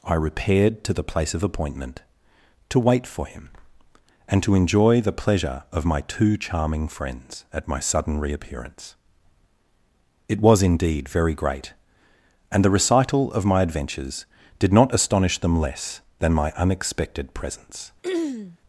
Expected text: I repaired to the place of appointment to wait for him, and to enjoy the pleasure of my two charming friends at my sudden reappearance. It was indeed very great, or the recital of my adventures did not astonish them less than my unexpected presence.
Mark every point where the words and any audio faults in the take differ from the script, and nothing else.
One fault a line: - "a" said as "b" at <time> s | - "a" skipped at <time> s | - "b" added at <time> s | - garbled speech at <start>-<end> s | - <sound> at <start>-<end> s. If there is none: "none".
- "or" said as "and" at 12.5 s
- throat clearing at 18.0-18.6 s